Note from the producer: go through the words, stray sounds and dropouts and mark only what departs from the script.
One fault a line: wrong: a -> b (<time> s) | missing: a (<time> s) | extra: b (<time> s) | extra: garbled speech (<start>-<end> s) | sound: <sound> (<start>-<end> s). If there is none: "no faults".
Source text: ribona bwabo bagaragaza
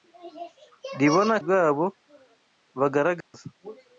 sound: dropout (3.2-3.3 s)